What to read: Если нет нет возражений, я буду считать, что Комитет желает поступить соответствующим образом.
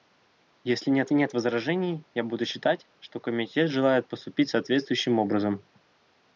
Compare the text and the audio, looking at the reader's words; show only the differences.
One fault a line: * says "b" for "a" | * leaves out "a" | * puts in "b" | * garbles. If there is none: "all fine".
all fine